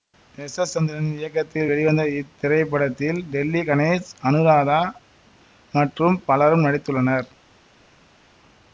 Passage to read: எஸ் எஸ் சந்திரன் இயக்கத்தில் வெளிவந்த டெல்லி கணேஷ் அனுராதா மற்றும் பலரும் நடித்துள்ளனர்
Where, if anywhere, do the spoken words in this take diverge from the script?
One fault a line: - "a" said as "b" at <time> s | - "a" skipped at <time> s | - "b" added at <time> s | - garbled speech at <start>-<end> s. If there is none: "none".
- "இத்திரைப்படத்தில்" added at 2.2 s